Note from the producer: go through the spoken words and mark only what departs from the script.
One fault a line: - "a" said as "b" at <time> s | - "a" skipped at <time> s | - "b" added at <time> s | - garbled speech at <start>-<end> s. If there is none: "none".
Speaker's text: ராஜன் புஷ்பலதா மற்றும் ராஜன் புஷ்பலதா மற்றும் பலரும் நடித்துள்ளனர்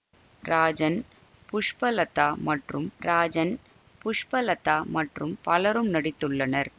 none